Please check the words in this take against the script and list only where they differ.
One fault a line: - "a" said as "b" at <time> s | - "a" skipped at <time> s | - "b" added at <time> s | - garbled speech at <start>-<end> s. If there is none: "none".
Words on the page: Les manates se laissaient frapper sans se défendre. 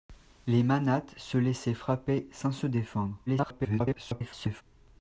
- garbled speech at 3.3-4.6 s